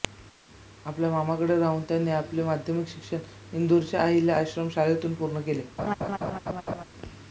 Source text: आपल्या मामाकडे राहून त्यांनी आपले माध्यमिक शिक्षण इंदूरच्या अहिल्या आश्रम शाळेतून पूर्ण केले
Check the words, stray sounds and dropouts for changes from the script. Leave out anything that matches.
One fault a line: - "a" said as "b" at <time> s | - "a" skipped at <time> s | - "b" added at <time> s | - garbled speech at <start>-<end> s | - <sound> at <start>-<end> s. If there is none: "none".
- laugh at 5.8-6.8 s